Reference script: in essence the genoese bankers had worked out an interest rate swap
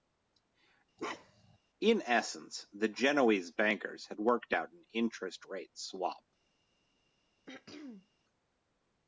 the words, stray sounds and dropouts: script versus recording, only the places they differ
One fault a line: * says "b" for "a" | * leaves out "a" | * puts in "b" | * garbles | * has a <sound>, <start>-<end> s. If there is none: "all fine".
* has a bark, 1.0-1.6 s
* has a throat clearing, 7.5-8.1 s